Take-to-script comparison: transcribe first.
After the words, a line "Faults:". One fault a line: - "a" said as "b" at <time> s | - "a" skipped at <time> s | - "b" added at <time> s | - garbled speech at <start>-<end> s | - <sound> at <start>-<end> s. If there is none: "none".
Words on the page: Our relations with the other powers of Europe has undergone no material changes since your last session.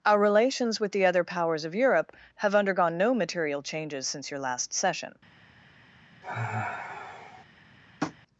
Our relations with the other powers of Europe have undergone no material changes since your last session.
Faults:
- "has" said as "have" at 2.3 s
- sigh at 6.2-7.4 s
- tap at 8.0-8.2 s